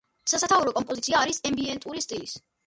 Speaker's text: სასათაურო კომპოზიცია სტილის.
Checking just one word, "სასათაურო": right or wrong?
right